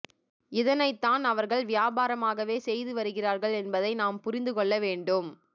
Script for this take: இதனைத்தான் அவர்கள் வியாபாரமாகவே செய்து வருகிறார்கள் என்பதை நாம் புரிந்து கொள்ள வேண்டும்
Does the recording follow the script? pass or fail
pass